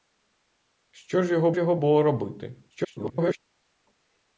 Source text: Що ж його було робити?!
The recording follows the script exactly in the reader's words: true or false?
false